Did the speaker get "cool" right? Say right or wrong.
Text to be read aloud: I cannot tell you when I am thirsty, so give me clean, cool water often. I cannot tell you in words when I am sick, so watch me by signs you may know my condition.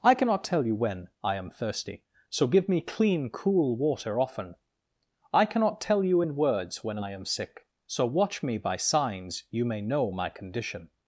right